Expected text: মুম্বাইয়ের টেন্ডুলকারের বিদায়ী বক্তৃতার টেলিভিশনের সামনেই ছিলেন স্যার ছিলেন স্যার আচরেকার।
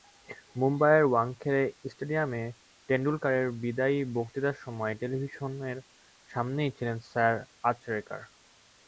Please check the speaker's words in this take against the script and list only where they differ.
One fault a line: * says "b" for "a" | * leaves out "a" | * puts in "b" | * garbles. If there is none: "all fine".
* puts in "ওয়াংখেড়ে স্টেডিয়ামে"
* puts in "সময়"
* leaves out "ছিলেন স্যার"